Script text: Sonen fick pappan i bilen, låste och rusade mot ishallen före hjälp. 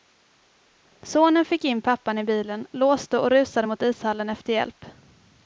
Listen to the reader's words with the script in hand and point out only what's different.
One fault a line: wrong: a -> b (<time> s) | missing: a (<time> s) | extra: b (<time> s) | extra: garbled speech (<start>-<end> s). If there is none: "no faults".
extra: in (1.6 s)
wrong: före -> efter (4.3 s)